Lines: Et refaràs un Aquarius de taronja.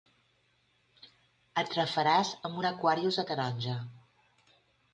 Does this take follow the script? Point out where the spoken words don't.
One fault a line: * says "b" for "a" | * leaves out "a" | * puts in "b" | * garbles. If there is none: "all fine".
* puts in "amb"